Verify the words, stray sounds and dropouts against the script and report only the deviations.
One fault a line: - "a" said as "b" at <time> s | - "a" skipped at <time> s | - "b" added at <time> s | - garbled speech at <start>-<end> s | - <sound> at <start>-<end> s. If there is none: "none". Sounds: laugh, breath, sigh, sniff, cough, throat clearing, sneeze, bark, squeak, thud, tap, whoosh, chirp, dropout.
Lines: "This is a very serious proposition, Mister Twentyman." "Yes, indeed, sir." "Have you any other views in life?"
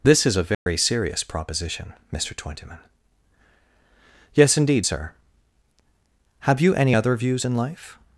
- dropout at 0.5-0.7 s